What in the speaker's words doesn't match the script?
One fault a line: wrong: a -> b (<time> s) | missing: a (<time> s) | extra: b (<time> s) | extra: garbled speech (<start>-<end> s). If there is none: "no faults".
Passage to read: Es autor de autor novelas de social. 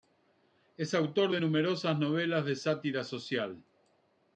wrong: autor -> numerosas (1.4 s)
extra: sátira (2.6 s)